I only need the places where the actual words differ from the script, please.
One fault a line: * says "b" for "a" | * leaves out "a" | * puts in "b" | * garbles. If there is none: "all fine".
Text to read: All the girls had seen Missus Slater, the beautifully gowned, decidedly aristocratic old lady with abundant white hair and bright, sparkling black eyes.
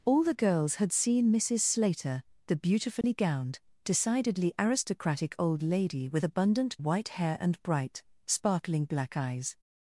all fine